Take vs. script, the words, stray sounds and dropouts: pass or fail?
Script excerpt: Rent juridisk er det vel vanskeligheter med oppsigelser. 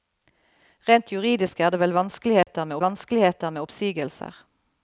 fail